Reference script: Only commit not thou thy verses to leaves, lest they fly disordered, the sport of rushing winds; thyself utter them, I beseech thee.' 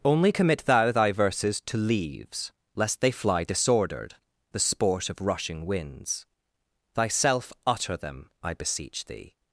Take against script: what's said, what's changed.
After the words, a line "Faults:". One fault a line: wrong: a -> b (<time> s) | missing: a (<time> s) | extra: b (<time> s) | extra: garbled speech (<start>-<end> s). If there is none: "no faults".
Only commit thou thy verses to leaves, lest they fly disordered, the sport of rushing winds; thyself utter them, I beseech thee.'
Faults:
missing: not (0.6 s)